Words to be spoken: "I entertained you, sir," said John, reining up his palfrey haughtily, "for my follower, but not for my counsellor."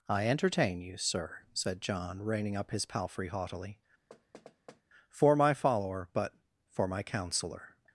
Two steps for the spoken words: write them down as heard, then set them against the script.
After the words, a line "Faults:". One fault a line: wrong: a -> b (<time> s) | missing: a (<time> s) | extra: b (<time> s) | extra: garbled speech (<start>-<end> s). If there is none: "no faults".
"I entertain you, sir," said John, reining up his palfrey haughtily, "for my follower, but for my counsellor."
Faults:
wrong: entertained -> entertain (0.3 s)
missing: not (6.3 s)